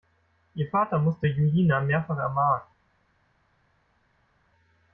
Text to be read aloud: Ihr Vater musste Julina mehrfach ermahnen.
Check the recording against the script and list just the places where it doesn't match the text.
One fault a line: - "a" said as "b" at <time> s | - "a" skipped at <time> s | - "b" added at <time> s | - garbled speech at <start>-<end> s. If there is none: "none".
none